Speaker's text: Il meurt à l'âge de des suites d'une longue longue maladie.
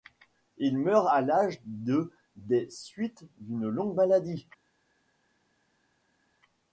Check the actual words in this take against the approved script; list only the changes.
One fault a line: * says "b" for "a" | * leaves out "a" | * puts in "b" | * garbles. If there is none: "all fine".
* leaves out "longue"